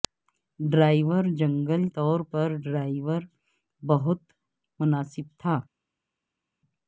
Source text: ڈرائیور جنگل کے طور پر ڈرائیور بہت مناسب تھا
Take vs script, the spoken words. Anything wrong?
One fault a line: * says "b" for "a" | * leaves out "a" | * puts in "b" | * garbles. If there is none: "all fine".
* leaves out "کے"